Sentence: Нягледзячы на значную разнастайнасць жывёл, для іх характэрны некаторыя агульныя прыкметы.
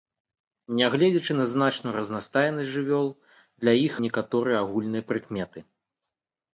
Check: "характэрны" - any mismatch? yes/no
yes